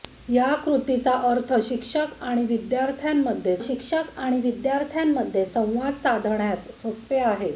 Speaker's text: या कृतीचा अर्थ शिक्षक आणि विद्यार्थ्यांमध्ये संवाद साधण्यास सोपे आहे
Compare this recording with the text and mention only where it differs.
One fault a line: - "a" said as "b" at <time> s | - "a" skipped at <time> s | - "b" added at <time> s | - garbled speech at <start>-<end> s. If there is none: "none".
- "शिक्षक आणि विद्यार्थ्यांमध्ये" added at 3.6 s